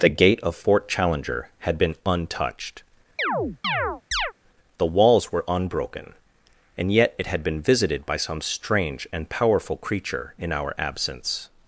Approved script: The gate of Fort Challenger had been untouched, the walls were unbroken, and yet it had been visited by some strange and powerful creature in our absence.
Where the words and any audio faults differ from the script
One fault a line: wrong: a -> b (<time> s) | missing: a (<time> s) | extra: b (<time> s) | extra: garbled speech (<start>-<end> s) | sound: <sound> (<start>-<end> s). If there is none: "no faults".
sound: chirp (3.2-4.3 s)